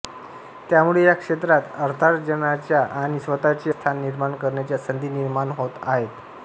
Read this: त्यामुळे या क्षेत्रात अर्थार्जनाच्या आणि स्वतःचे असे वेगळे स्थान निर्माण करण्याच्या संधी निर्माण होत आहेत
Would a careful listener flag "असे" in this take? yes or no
yes